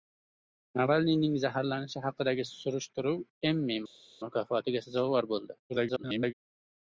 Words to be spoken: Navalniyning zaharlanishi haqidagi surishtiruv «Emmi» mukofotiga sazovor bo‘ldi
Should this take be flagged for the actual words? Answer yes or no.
yes